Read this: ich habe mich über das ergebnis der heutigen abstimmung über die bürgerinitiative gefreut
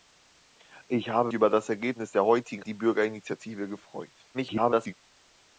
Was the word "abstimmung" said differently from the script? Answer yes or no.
yes